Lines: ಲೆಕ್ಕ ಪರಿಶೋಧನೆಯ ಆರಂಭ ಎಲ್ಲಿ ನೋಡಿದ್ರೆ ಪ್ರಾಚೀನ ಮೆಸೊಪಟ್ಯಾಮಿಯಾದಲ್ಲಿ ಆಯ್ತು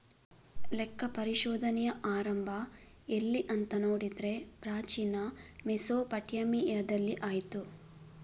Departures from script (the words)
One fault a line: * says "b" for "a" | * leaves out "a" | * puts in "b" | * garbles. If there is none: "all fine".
* puts in "ಅಂತ"